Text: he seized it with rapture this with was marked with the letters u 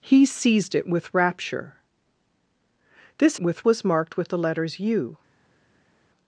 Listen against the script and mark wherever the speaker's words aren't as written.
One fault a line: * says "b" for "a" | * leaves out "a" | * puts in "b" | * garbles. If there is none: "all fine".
all fine